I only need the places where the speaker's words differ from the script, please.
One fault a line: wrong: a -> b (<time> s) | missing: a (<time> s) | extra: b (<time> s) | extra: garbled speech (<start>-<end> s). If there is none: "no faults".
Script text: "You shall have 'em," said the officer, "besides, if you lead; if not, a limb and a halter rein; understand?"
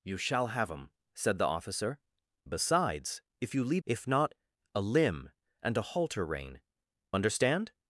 no faults